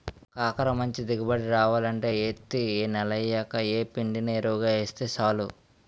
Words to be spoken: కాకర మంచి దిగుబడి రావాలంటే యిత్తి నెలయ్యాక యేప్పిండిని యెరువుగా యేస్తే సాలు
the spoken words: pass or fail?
pass